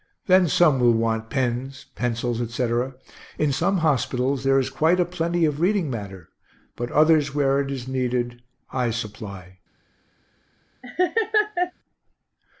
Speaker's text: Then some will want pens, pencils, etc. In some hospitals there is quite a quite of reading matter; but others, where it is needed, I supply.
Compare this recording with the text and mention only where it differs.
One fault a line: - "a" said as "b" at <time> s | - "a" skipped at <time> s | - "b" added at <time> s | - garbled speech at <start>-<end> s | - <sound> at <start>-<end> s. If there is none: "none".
- "quite" said as "plenty" at 5.0 s
- laugh at 10.8-11.7 s